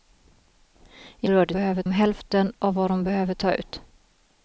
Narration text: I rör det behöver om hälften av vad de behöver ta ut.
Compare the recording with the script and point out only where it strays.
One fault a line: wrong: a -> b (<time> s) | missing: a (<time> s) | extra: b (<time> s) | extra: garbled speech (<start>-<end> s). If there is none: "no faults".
no faults